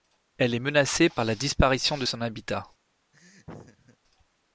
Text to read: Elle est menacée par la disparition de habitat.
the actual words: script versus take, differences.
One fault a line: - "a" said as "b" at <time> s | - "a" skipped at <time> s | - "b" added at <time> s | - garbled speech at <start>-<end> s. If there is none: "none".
- "son" added at 2.0 s